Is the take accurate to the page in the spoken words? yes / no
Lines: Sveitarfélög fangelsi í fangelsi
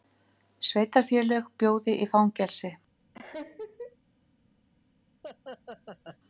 no